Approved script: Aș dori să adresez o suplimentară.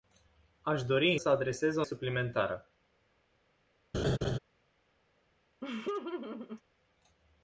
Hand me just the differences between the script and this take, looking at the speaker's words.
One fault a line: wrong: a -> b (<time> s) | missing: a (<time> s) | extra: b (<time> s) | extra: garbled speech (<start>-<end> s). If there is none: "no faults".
no faults